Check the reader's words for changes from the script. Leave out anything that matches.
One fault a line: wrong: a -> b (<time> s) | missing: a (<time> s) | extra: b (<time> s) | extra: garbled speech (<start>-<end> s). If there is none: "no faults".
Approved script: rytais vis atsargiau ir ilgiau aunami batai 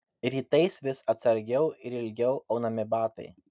no faults